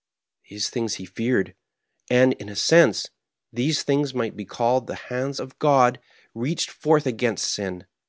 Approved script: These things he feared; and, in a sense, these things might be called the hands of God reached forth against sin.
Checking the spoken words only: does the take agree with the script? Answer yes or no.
yes